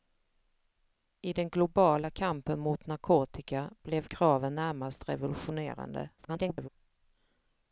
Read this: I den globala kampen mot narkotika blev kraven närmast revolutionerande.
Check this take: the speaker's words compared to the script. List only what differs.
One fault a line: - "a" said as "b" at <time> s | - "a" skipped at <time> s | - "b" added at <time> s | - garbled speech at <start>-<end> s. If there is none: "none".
- garbled speech at 6.2-6.7 s